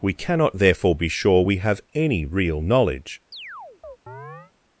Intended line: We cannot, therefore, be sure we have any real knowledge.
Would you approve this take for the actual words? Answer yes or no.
yes